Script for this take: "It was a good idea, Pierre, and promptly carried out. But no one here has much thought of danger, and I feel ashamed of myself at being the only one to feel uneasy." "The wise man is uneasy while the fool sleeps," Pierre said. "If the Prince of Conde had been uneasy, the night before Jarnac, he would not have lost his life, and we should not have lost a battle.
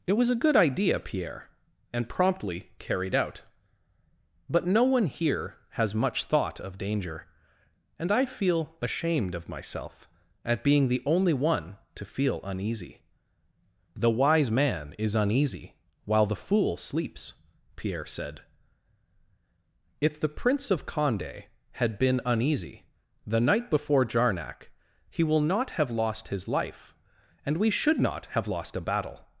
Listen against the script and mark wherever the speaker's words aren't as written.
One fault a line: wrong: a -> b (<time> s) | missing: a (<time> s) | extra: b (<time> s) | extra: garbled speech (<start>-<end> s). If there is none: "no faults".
wrong: would -> will (25.2 s)